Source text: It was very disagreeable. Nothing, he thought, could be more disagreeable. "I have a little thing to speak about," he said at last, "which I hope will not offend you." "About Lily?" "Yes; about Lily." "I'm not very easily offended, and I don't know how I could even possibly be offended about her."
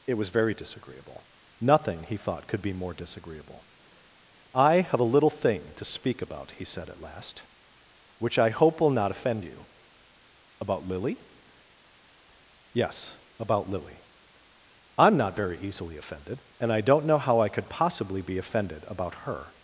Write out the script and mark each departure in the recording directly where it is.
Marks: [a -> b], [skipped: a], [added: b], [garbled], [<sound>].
It was very disagreeable. Nothing, he thought, could be more disagreeable. "I have a little thing to speak about," he said at last, "which I hope will not offend you." "About Lily?" "Yes; about Lily." "I'm not very easily offended, and I don't know how I could [skipped: even] possibly be offended about her."